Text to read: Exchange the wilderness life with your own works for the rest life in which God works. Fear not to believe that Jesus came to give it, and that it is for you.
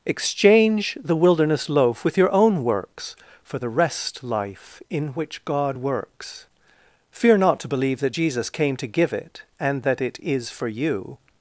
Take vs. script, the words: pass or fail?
fail